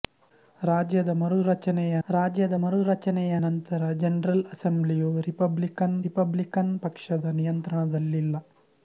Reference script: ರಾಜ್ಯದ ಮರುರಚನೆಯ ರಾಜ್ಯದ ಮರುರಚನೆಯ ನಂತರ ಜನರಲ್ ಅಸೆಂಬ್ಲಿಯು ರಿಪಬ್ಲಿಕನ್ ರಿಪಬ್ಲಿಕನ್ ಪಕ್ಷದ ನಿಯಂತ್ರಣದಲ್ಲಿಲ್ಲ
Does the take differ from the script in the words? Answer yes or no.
no